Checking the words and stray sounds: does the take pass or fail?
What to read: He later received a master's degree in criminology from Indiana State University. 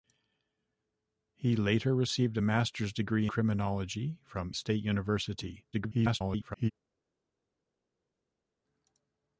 fail